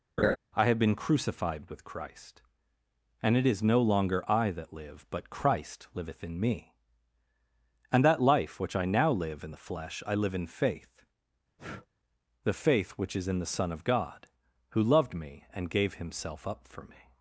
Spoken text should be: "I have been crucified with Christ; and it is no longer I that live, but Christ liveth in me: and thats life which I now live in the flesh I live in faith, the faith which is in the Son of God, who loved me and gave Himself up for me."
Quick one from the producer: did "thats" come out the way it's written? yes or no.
no